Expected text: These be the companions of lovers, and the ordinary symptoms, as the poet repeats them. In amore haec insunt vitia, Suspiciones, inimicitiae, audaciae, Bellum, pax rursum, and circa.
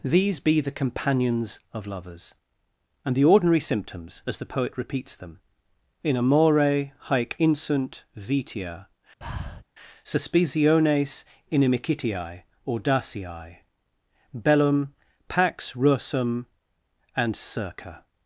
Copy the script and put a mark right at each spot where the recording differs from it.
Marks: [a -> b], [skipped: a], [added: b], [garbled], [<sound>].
These be the companions of lovers, and the ordinary symptoms, as the poet repeats them. In amore haec insunt vitia, [breath] Suspiciones, inimicitiae, audaciae, Bellum, pax rursum, and circa.